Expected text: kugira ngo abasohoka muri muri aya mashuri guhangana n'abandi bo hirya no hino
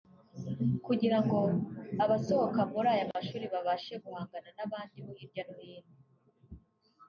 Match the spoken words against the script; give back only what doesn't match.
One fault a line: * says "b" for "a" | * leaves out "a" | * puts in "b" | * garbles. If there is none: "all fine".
* leaves out "muri"
* puts in "babashe"